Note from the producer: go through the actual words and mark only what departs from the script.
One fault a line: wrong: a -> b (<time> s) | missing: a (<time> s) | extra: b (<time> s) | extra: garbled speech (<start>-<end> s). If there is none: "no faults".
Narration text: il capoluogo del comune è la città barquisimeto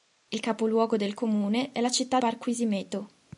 no faults